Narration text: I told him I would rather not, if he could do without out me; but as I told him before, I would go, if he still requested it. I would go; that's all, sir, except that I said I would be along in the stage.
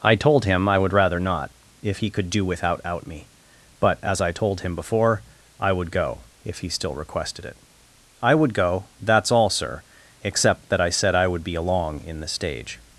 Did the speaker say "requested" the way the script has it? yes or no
yes